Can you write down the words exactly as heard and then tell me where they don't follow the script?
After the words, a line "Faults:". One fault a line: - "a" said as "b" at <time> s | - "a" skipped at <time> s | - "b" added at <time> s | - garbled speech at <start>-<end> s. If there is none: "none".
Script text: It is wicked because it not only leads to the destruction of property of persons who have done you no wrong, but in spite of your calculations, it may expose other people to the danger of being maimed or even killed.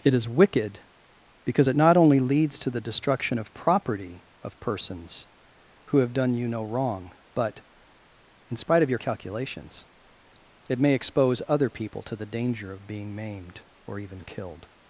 It is wicked because it not only leads to the destruction of property of persons who have done you no wrong, but in spite of your calculations, it may expose other people to the danger of being maimed or even killed.
Faults:
none